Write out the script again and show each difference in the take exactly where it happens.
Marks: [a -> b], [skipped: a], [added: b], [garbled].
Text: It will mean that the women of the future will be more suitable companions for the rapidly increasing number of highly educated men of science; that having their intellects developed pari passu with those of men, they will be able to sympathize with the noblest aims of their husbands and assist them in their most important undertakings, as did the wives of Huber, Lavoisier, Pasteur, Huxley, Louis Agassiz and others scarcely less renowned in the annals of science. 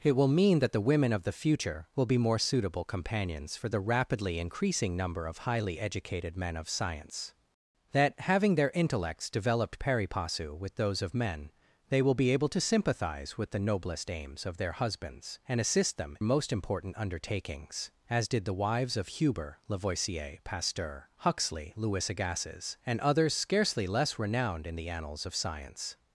It will mean that the women of the future will be more suitable companions for the rapidly increasing number of highly educated men of science; that having their intellects developed pari passu with those of men, they will be able to sympathize with the noblest aims of their husbands and assist them [skipped: in their] most important undertakings, as did the wives of Huber, Lavoisier, Pasteur, Huxley, Louis Agassiz and others scarcely less renowned in the annals of science.